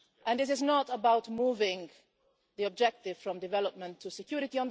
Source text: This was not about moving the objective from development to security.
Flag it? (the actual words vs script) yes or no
yes